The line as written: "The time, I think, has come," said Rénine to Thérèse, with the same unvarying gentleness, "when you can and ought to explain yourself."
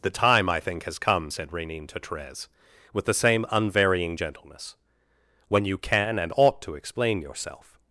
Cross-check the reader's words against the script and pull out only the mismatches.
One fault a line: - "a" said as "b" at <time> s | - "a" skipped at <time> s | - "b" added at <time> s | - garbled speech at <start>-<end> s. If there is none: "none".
none